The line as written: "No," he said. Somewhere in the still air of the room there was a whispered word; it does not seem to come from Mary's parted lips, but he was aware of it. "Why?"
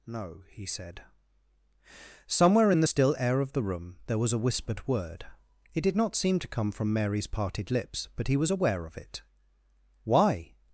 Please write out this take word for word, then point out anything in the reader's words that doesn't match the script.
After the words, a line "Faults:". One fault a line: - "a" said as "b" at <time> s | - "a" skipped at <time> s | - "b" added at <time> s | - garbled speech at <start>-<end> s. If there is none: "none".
"No," he said. Somewhere in the still air of the room there was a whispered word; it did not seem to come from Mary's parted lips, but he was aware of it. "Why?"
Faults:
- "does" said as "did" at 5.8 s